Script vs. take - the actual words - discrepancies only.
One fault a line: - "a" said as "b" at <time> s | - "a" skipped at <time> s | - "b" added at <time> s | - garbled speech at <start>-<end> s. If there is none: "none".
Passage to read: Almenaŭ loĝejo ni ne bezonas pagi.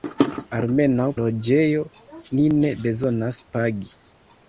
none